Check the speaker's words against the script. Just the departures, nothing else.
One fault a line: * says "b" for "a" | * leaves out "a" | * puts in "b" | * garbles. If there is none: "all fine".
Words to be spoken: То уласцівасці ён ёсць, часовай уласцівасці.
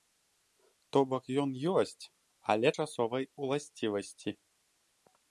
* says "бок" for "уласцівасці"
* puts in "але"